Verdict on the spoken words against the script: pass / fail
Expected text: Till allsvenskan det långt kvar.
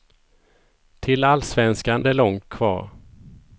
pass